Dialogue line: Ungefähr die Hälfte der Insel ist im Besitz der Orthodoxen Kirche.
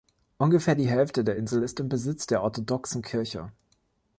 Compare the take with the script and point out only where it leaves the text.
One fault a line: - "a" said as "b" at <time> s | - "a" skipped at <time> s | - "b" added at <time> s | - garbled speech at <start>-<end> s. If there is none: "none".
none